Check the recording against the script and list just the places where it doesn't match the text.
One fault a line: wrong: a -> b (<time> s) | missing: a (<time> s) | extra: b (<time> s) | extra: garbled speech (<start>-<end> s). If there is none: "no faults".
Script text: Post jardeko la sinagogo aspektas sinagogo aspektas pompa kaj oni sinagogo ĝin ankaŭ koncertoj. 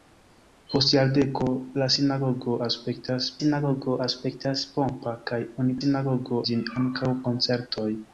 no faults